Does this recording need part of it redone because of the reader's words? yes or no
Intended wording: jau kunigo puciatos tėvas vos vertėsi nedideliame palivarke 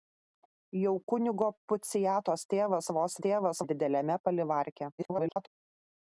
yes